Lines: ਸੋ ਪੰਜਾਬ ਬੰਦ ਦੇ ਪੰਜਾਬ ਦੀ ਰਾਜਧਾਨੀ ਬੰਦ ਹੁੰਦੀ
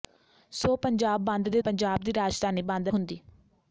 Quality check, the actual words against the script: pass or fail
pass